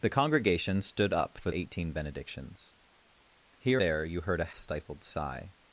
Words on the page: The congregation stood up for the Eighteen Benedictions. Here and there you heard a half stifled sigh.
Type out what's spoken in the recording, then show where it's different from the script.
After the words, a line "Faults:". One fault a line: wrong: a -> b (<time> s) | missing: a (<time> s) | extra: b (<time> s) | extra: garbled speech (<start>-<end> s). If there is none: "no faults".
The congregation stood up for Eighteen Benedictions. Here there you heard a stifled sigh.
Faults:
missing: the (1.5 s)
missing: and (3.8 s)
missing: half (4.5 s)